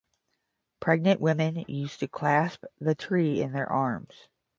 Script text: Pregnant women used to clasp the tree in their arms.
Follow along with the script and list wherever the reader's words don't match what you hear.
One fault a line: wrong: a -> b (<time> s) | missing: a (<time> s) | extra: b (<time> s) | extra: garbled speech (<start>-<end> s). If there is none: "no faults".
no faults